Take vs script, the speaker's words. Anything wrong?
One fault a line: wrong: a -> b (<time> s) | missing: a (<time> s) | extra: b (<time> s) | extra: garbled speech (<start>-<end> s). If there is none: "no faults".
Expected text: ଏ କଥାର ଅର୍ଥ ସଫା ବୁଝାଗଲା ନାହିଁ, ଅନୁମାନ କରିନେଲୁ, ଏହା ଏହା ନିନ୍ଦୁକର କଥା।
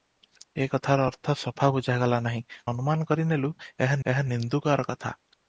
no faults